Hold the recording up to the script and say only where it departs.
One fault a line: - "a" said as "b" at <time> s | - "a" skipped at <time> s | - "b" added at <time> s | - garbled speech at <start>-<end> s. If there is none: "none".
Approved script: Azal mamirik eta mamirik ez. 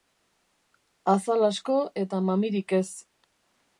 - "mamirik" said as "asko" at 1.5 s